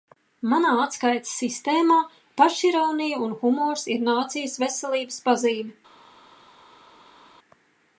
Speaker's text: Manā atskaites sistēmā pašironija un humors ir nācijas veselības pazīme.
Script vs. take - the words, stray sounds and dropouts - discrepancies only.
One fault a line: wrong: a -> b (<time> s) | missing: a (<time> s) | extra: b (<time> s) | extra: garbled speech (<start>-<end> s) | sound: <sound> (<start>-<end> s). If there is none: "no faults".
no faults